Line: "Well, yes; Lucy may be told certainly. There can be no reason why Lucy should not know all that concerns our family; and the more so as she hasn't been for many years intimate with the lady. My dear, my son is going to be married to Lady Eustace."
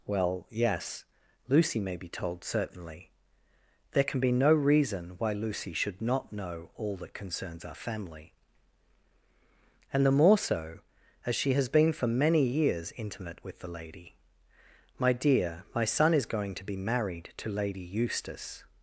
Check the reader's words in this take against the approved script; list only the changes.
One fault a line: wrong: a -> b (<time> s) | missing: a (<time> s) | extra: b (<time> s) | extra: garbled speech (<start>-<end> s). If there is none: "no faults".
wrong: hasn't -> has (11.5 s)